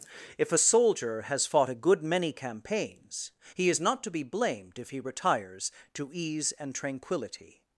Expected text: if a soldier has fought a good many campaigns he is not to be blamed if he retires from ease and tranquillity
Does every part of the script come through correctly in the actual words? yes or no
no